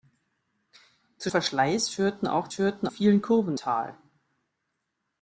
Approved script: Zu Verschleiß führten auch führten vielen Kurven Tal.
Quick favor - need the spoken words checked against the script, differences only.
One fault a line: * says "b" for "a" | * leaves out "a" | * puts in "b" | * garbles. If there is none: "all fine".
all fine